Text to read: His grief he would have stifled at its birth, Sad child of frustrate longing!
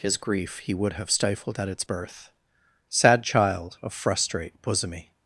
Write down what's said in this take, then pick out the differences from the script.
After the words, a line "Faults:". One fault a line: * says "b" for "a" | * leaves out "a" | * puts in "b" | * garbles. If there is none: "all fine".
His grief he would have stifled at its birth, Sad child of frustrate bosomy!
Faults:
* says "bosomy" for "longing"